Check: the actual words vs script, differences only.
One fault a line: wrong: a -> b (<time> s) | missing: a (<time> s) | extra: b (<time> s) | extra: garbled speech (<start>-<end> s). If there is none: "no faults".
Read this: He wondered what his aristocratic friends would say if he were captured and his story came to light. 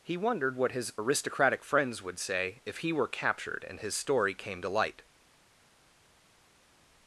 no faults